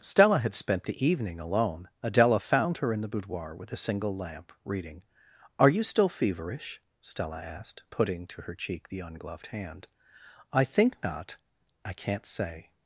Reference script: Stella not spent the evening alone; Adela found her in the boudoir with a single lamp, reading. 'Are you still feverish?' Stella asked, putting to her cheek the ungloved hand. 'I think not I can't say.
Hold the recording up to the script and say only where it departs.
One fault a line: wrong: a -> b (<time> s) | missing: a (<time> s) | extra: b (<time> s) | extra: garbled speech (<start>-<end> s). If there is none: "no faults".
wrong: not -> had (0.4 s)